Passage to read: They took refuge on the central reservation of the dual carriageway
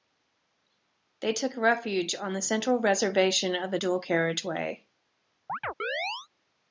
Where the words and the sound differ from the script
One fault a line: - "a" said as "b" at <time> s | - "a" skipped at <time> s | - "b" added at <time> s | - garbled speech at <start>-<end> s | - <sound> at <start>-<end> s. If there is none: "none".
- chirp at 5.5-6.3 s